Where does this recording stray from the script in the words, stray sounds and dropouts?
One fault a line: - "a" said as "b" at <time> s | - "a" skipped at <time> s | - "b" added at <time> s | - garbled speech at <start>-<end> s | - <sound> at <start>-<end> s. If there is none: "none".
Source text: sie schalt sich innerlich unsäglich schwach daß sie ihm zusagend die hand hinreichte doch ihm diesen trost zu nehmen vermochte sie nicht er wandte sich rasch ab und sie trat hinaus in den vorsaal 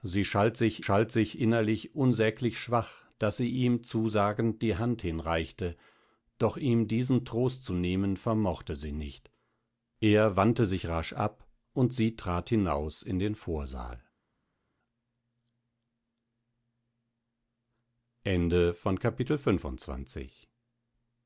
- "schalt sich" added at 0.8 s